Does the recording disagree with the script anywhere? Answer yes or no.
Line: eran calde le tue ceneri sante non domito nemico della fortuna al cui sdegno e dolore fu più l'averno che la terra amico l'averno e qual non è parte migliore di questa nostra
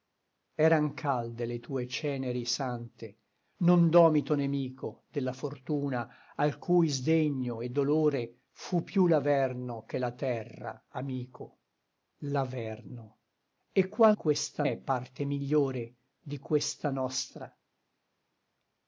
yes